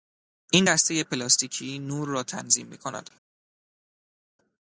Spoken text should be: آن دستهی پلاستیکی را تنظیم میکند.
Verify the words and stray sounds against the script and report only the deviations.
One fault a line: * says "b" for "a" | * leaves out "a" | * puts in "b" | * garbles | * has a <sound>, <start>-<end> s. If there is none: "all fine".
* says "این" for "آن"
* puts in "نور"